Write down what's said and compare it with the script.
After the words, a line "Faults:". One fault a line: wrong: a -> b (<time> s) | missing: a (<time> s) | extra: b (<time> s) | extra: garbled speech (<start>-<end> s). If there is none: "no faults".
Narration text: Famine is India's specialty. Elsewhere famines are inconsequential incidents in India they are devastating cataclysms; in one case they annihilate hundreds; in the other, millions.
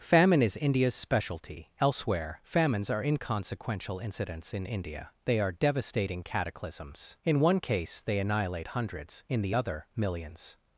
Famine is India's specialty. Elsewhere famines are inconsequential incidents in India they are devastating cataclysms; in one case they annihilate hundreds; in the other, millions.
Faults:
no faults